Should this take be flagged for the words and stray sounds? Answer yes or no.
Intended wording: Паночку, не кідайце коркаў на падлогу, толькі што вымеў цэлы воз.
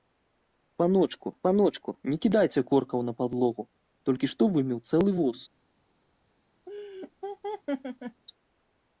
yes